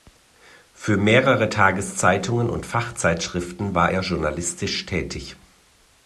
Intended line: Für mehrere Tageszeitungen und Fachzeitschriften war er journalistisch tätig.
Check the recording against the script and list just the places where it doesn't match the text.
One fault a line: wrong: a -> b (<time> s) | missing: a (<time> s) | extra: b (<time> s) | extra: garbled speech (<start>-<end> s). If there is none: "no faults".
no faults